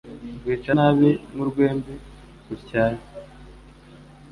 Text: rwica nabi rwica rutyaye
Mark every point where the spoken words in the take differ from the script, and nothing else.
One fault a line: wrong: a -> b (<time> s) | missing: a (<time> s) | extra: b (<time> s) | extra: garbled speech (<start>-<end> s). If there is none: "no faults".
wrong: rwica -> nk'urwembe (1.3 s)